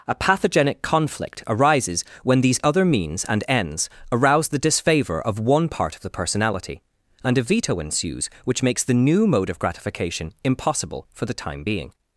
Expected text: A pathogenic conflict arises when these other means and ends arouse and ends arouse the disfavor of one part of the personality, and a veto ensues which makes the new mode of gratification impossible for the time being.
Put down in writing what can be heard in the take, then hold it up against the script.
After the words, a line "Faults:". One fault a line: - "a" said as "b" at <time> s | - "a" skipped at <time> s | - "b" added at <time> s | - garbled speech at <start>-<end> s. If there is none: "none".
A pathogenic conflict arises when these other means and ends arouse the disfavor of one part of the personality, and a veto ensues which makes the new mode of gratification impossible for the time being.
Faults:
- "and ends arouse" skipped at 4.5 s